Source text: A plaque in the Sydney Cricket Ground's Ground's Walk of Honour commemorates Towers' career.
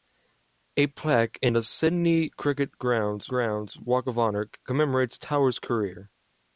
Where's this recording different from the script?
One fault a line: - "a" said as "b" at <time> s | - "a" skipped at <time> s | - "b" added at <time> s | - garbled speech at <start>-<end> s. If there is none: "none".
none